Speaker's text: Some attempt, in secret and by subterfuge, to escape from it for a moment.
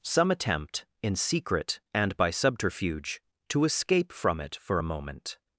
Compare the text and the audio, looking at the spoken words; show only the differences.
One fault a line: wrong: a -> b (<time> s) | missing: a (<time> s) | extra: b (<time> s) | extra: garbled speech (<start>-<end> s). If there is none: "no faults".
no faults